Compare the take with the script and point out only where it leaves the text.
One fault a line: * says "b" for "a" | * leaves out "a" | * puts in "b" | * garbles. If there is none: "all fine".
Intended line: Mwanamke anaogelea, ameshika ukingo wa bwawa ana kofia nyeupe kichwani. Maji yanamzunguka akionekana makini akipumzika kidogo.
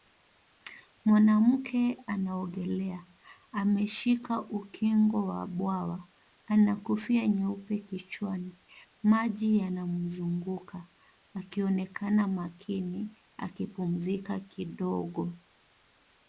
all fine